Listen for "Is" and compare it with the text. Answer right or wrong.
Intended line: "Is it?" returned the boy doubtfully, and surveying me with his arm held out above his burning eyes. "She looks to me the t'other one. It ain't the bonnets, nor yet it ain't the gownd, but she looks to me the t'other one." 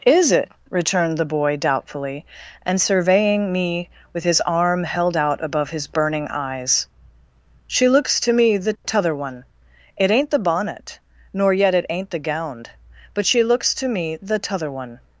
right